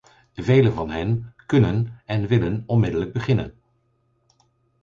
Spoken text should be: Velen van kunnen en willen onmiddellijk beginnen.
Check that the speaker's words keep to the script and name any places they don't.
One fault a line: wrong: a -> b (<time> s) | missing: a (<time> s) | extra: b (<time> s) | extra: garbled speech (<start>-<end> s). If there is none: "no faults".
extra: hen (0.9 s)